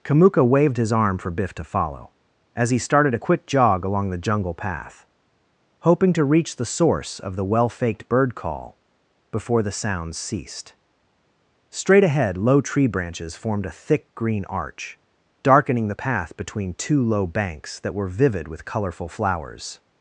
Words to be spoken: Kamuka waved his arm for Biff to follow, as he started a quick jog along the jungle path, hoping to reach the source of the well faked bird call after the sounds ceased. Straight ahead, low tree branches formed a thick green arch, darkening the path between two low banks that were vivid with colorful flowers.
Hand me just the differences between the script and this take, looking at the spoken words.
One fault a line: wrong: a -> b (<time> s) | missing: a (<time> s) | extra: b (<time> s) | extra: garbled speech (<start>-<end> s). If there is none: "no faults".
wrong: after -> before (9.3 s)